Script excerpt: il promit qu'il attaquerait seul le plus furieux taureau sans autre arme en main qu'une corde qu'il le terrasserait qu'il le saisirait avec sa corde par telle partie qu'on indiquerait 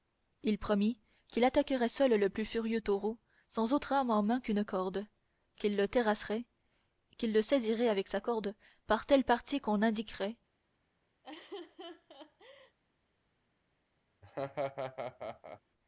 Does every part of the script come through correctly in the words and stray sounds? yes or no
no